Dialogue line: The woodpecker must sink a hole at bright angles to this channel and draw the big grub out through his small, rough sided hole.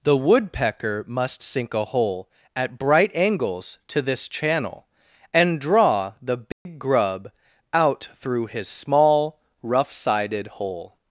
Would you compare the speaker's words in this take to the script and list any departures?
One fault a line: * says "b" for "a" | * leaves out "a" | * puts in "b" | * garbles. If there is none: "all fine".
all fine